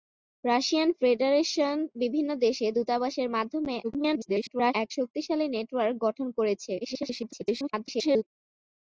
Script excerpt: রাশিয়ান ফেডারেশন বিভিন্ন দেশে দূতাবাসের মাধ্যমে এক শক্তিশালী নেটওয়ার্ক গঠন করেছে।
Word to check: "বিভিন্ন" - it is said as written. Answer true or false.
true